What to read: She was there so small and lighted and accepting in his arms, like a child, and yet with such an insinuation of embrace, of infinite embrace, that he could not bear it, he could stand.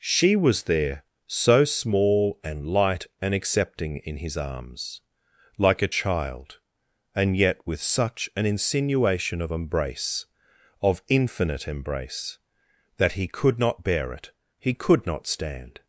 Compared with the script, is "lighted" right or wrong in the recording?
wrong